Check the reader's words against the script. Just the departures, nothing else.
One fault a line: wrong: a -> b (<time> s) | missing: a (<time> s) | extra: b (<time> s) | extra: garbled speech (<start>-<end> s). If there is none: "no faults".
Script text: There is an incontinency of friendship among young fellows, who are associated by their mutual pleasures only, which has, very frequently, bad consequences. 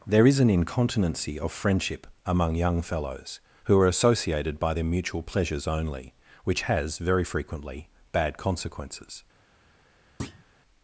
no faults